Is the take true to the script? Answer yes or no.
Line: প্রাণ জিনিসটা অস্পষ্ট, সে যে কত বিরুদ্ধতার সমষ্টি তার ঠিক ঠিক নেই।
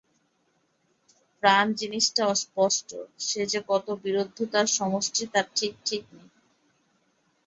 yes